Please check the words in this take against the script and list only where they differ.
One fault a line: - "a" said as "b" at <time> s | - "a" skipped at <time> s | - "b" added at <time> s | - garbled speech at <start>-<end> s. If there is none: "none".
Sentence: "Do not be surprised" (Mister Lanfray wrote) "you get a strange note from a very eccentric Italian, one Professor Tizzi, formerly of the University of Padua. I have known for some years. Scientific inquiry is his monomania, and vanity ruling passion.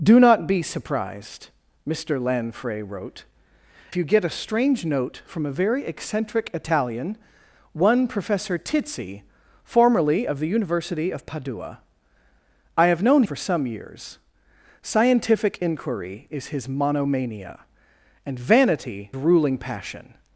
none